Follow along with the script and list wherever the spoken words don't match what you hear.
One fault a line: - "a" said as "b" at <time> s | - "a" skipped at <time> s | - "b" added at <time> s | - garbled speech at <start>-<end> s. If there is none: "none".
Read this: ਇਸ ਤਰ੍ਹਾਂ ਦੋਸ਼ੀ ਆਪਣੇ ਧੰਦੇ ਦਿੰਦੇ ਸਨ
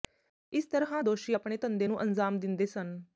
- "ਨੂੰ ਅੰਜ਼ਾਮ" added at 1.8 s